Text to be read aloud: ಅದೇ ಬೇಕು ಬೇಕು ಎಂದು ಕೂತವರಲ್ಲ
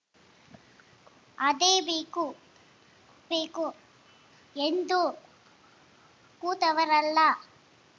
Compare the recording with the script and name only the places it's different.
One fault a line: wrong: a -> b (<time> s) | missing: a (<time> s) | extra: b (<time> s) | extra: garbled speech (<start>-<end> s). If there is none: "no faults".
no faults